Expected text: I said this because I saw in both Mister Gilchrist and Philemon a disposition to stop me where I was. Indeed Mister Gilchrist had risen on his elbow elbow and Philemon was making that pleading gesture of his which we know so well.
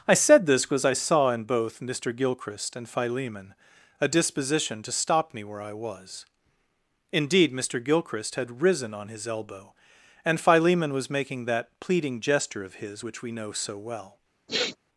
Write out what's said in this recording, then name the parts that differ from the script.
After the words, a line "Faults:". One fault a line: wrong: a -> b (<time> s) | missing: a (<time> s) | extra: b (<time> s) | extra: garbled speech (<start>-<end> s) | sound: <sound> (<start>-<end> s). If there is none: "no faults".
I said this because I saw in both Mister Gilchrist and Philemon a disposition to stop me where I was. Indeed Mister Gilchrist had risen on his elbow and Philemon was making that pleading gesture of his which we know so well.
Faults:
missing: elbow (9.7 s)
sound: sniff (14.5-14.8 s)